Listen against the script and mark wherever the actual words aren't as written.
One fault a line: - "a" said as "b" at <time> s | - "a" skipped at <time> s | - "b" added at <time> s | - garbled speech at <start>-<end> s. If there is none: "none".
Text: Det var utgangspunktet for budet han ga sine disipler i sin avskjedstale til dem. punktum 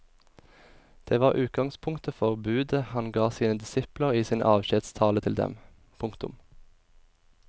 none